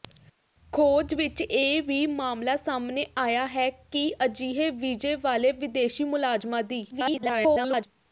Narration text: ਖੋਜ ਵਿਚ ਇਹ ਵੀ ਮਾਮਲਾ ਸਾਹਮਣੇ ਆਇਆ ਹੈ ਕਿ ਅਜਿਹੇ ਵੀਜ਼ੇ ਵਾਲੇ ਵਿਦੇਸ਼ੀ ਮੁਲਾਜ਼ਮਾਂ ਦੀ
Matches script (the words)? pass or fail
fail